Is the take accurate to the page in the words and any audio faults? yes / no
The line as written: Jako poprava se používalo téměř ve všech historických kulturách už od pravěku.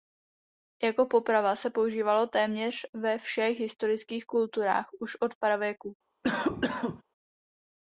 no